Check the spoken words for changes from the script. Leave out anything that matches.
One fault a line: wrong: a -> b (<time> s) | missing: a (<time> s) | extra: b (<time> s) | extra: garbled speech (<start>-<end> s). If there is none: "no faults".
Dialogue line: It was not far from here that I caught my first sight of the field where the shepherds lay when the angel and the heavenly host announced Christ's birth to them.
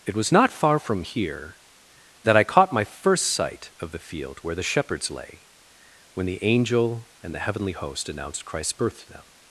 no faults